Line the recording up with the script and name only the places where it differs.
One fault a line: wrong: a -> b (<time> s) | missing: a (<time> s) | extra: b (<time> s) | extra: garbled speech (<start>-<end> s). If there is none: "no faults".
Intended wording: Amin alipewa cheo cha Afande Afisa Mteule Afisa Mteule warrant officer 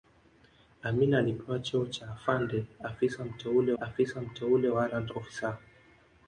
no faults